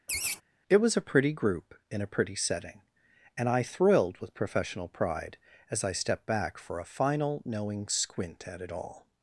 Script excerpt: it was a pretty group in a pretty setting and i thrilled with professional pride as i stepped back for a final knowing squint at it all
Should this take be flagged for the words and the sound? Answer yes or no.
yes